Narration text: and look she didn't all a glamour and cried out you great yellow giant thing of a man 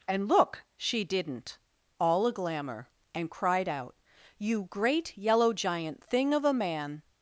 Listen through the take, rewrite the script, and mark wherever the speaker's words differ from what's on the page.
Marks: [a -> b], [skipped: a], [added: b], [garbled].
and look she didn't all a glamour and cried out you great yellow giant thing of a man